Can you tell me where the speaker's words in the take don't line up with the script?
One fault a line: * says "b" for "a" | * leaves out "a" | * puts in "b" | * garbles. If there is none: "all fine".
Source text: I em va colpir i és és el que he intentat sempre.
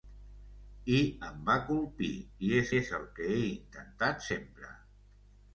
all fine